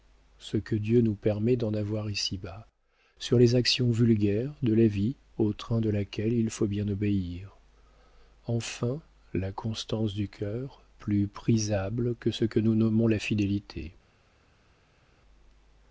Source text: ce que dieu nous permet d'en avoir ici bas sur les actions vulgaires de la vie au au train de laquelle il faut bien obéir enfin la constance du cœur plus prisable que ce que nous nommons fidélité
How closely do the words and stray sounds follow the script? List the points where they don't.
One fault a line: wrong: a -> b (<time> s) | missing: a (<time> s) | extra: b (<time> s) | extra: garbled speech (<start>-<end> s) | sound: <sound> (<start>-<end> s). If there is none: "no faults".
missing: au (5.5 s)
extra: la (13.1 s)